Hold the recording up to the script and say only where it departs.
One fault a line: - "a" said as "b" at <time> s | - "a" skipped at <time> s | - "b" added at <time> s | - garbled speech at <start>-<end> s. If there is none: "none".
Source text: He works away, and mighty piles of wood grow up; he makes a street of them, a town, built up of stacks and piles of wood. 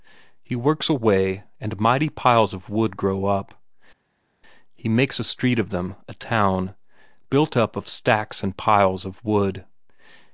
none